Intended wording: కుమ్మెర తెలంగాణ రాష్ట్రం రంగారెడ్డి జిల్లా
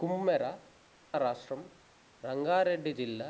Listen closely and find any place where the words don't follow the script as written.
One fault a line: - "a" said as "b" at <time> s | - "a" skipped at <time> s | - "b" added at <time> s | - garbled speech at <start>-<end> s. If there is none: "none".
- "తెలంగాణ" skipped at 0.5 s